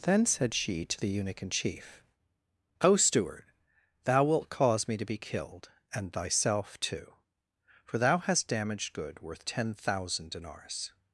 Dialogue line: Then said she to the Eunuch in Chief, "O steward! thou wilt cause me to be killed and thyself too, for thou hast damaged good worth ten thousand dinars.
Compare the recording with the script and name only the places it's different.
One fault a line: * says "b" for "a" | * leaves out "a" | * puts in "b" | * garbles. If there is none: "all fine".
all fine